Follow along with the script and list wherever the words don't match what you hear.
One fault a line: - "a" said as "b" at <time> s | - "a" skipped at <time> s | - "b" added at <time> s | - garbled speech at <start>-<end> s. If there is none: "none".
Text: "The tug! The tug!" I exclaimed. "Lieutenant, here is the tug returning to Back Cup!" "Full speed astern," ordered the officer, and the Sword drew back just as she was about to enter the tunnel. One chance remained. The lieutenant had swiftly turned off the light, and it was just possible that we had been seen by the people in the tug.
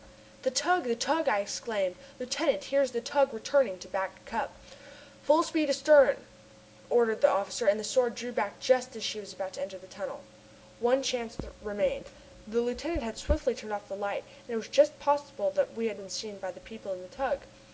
none